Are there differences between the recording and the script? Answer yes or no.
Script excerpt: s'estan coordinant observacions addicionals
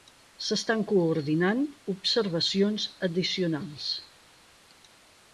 no